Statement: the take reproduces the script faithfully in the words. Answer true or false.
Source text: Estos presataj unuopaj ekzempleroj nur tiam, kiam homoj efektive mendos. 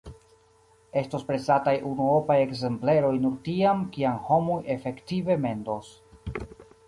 true